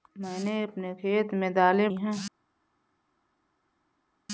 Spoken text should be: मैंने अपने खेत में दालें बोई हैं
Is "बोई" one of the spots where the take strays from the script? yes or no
yes